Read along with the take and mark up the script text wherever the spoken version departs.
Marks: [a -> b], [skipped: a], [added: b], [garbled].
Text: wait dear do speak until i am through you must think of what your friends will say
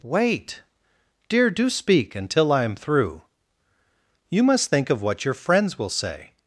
wait dear do speak until i am through you must think of what your friends will say